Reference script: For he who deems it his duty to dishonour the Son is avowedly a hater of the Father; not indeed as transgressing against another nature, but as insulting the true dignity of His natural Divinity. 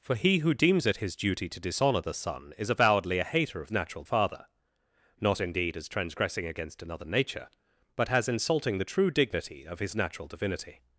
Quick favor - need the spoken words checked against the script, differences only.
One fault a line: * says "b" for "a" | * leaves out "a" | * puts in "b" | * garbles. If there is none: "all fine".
* says "natural" for "the"